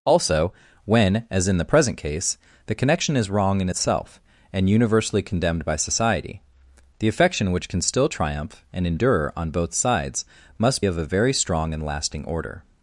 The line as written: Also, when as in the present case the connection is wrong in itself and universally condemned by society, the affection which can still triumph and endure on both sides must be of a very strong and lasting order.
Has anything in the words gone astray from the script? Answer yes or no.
yes